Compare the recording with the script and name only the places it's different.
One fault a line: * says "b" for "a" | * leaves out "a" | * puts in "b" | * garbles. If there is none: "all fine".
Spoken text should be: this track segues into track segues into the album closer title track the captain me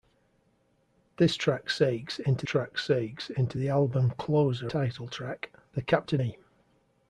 all fine